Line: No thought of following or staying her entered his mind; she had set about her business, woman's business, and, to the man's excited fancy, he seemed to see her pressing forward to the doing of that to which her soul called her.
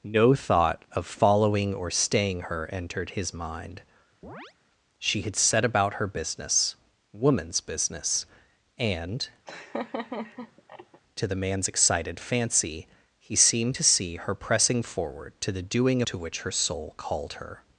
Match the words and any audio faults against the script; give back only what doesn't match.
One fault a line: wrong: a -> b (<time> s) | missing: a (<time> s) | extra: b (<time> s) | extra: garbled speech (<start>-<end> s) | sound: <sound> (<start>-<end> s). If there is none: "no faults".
sound: chirp (4.2-4.5 s)
sound: laugh (9.5-11.0 s)
missing: of that (16.0 s)